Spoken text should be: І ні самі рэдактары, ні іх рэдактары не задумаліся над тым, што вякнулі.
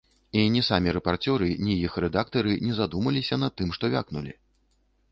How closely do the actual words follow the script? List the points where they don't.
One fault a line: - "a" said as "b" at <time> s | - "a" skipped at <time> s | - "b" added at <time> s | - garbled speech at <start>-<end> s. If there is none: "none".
- "рэдактары" said as "рэпарцёры" at 1.0 s